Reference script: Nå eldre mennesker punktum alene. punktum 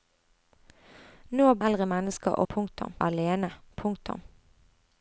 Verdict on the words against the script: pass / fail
pass